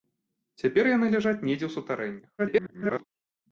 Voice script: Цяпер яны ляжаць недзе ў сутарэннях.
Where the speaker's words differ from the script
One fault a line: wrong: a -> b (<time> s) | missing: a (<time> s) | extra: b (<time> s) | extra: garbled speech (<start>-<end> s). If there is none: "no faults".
extra: garbled speech (2.4-3.0 s)